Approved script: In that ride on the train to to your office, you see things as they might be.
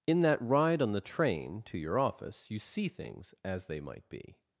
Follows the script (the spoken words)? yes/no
no